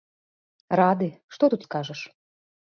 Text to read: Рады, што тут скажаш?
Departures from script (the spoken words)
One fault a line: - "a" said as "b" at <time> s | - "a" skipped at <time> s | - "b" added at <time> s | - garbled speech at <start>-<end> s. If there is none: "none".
none